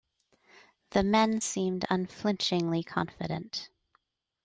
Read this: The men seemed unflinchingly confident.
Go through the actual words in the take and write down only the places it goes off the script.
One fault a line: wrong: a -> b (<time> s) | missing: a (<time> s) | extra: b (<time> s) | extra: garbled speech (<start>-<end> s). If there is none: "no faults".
no faults